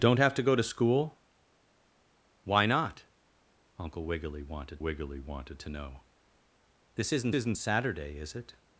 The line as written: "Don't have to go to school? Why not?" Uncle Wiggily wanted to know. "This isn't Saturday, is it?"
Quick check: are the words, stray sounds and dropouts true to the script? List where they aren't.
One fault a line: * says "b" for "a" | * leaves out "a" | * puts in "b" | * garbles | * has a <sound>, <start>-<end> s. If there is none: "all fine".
* puts in "Wiggily wanted"
* puts in "isn't"